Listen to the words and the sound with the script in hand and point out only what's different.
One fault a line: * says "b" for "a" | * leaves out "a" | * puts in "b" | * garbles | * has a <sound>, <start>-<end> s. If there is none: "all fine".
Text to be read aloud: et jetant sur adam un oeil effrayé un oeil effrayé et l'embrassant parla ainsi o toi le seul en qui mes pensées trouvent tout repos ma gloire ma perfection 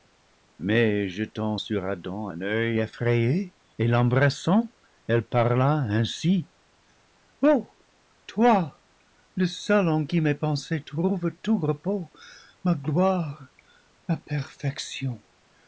* says "mais" for "et"
* leaves out "un oeil effrayé"
* puts in "elle"